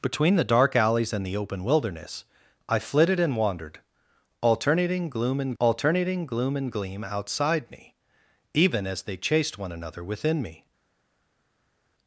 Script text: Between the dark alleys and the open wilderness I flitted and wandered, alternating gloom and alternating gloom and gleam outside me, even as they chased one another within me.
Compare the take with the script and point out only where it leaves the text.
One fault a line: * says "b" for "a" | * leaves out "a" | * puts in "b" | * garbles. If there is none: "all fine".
all fine